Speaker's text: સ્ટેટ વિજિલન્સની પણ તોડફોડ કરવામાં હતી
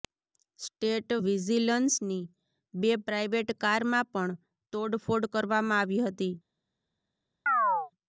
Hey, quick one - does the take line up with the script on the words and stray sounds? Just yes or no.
no